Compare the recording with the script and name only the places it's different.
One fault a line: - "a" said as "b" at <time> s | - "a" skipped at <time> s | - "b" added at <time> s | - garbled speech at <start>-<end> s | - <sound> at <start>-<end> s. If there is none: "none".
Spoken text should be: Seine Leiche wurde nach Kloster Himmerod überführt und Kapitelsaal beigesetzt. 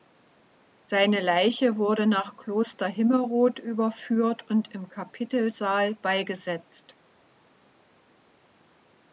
- "im" added at 4.7 s